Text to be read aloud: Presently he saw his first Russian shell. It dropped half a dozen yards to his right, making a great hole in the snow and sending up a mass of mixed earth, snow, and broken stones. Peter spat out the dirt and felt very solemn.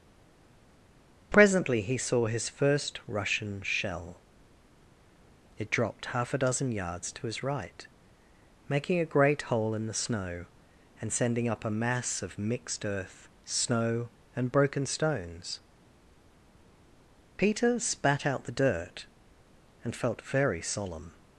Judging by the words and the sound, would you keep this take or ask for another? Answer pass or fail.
pass